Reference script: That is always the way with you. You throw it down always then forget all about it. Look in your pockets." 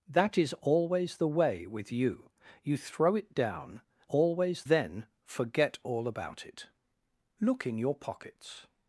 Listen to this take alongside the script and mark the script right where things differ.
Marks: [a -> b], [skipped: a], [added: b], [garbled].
That is always the way with you. You throw it down always then forget all about it. Look in your pockets."